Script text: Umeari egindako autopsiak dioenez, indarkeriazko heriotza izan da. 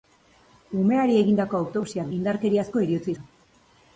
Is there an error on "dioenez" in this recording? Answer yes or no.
yes